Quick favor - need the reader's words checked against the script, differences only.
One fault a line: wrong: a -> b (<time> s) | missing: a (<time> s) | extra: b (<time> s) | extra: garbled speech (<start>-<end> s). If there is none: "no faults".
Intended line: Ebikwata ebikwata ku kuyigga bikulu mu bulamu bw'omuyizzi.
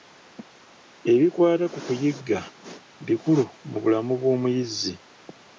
missing: ebikwata (1.6 s)